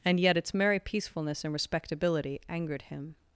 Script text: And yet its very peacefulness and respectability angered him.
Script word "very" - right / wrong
wrong